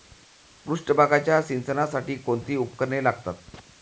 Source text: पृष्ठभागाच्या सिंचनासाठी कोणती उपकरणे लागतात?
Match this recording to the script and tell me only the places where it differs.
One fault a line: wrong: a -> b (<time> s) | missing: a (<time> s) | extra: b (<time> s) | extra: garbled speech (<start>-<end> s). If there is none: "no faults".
no faults